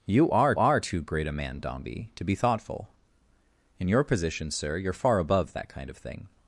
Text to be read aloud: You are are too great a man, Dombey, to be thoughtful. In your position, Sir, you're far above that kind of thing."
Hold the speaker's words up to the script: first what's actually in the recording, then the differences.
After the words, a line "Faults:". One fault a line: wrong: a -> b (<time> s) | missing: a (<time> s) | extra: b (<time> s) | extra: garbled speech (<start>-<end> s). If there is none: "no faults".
You are are too great a man, Dombey, to be thoughtful. In your position, Sir, you're far above that kind of thing."
Faults:
no faults